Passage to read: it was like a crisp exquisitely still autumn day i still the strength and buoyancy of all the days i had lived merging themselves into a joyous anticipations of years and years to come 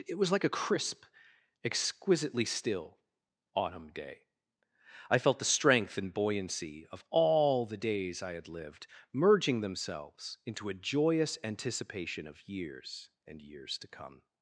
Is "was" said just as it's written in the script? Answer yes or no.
yes